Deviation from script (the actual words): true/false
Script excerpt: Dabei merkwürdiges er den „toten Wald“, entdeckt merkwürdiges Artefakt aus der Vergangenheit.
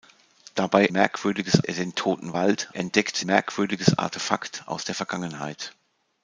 false